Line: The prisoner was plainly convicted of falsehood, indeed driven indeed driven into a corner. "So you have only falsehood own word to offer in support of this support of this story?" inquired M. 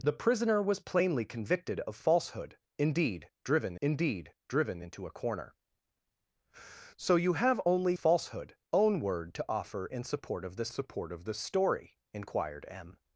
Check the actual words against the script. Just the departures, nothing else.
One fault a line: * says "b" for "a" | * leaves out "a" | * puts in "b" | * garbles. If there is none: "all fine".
all fine